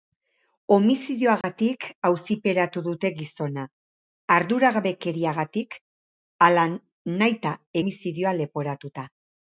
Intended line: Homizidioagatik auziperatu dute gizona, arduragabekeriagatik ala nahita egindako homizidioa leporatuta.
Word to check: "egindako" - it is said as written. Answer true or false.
false